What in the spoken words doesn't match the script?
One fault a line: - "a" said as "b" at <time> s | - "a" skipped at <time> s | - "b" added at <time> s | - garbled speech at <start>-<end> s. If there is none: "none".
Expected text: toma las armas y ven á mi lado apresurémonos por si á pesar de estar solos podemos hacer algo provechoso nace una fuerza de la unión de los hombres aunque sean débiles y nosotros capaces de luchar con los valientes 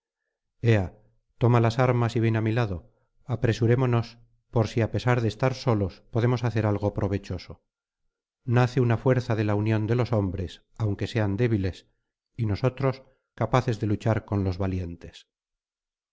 none